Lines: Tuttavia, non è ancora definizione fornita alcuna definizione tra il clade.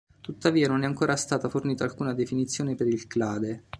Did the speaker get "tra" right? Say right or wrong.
wrong